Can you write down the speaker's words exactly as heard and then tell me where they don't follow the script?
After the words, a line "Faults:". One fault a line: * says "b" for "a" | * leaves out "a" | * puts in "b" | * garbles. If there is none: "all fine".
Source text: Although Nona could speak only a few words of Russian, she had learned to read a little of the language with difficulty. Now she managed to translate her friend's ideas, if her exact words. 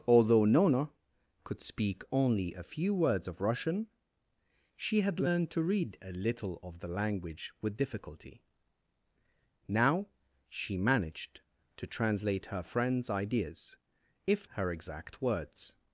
Although Nona could speak only a few words of Russian, she had learned to read a little of the language with difficulty. Now she managed to translate her friend's ideas, if her exact words.
Faults:
all fine